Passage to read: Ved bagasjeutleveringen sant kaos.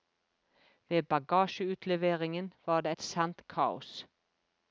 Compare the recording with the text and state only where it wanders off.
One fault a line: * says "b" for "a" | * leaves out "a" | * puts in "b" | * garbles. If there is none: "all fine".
* puts in "var det et"